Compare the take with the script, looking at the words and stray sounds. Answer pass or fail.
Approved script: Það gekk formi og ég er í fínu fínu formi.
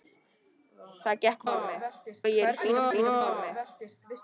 pass